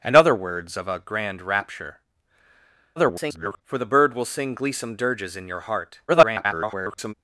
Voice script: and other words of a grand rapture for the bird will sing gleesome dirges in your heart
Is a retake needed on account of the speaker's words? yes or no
yes